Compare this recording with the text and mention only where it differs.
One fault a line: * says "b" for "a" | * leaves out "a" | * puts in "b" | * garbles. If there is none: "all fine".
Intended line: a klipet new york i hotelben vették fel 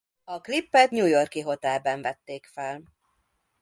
all fine